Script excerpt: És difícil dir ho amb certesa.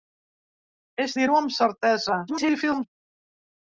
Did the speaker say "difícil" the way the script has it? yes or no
no